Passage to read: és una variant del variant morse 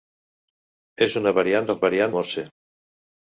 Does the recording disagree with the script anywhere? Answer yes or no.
no